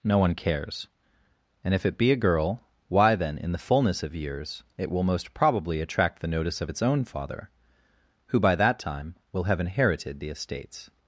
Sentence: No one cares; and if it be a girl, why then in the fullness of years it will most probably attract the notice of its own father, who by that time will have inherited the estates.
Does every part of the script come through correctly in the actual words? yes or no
yes